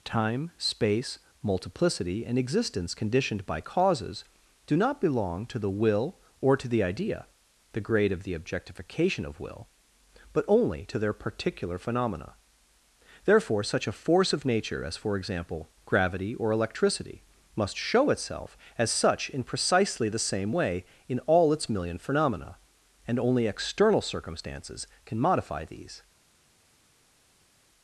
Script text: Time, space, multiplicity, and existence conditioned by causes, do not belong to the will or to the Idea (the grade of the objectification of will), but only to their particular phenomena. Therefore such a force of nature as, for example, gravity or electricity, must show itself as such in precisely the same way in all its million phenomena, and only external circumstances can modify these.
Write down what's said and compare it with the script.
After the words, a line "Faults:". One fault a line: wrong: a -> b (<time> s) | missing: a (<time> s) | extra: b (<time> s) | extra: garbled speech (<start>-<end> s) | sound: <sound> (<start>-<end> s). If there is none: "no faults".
Time, space, multiplicity, and existence conditioned by causes, do not belong to the will or to the Idea (the grade of the objectification of will), but only to their particular phenomena. Therefore such a force of nature as, for example, gravity or electricity, must show itself as such in precisely the same way in all its million phenomena, and only external circumstances can modify these.
Faults:
no faults